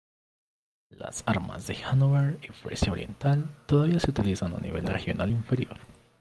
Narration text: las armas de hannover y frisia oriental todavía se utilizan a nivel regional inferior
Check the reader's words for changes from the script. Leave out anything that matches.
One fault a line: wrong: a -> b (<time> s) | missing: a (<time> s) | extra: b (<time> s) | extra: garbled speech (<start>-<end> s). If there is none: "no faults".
no faults